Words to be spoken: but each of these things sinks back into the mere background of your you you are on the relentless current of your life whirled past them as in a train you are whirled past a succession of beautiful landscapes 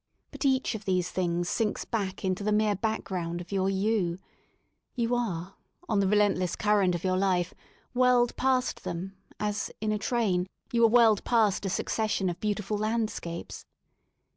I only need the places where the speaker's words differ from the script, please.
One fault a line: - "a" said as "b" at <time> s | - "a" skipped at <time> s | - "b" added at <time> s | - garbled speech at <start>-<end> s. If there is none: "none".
none